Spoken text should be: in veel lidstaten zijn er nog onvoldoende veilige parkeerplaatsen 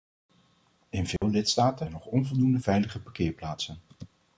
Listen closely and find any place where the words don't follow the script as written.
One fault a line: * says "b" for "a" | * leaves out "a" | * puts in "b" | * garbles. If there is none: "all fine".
* leaves out "zijn"